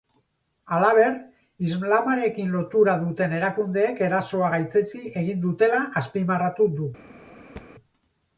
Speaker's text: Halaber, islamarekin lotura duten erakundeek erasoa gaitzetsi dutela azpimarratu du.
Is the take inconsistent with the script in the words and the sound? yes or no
yes